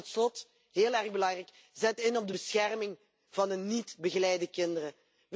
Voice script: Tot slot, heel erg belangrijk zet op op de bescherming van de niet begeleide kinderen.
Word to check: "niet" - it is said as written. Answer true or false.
true